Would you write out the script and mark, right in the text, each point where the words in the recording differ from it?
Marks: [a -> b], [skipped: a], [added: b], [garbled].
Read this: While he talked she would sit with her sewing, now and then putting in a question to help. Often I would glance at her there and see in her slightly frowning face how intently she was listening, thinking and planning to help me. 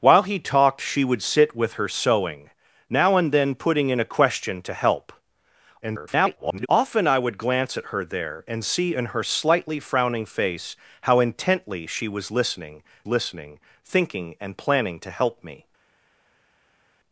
While he talked she would sit with her sewing, now and then putting in a question to help. [garbled] Often I would glance at her there and see in her slightly frowning face how intently she was listening, [added: listening] thinking and planning to help me.